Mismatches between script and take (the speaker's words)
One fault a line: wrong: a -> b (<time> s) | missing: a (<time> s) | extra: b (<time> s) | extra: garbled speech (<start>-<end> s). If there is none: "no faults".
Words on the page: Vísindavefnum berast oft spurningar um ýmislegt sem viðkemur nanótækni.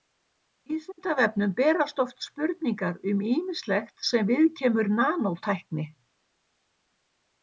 no faults